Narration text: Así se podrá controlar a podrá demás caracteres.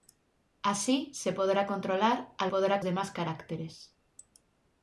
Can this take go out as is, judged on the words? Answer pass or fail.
pass